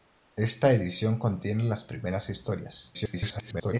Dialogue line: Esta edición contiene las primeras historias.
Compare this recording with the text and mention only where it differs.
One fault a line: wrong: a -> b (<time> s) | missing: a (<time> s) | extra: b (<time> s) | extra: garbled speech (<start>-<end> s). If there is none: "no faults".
extra: garbled speech (2.9-3.8 s)